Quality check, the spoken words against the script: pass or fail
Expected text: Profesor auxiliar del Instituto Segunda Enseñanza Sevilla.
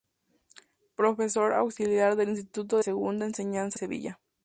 pass